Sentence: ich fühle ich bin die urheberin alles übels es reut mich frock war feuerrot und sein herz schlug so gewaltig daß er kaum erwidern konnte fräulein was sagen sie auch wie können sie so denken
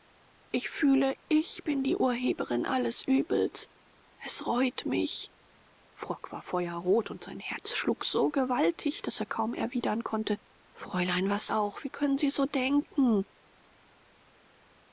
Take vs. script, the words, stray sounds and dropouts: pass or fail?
fail